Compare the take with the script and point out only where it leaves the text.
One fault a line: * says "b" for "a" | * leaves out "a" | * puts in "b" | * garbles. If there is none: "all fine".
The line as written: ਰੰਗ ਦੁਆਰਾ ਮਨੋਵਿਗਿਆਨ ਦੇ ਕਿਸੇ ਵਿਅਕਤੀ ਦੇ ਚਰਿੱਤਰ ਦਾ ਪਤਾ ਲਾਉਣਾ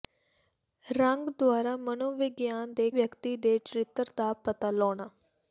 * leaves out "ਕਿਸੇ"